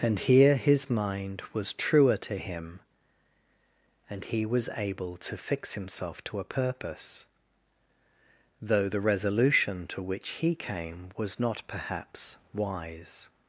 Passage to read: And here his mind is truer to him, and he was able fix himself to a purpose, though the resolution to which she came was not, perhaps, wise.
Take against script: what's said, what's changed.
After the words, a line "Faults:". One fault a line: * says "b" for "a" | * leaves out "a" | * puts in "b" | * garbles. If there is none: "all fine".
And here his mind was truer to him, and he was able to fix himself to a purpose, though the resolution to which he came was not, perhaps, wise.
Faults:
* says "was" for "is"
* puts in "to"
* says "he" for "she"